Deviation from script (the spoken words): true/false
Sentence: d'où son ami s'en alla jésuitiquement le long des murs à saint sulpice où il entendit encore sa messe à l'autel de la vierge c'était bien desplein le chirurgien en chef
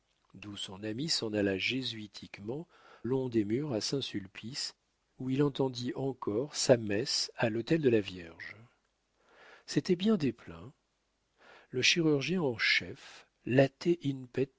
true